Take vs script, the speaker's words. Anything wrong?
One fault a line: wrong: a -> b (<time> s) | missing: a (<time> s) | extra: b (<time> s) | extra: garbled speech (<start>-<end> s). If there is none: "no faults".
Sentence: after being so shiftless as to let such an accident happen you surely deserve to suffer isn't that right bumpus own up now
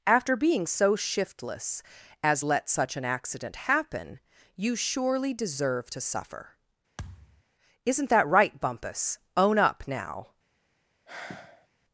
missing: to (2.4 s)